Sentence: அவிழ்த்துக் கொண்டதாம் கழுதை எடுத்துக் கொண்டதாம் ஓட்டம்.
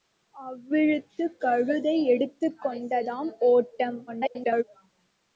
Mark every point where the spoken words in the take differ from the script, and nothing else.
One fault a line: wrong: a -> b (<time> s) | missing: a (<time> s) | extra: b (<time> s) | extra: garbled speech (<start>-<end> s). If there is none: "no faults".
missing: கொண்டதாம் (1.4 s)
extra: garbled speech (4.1-4.6 s)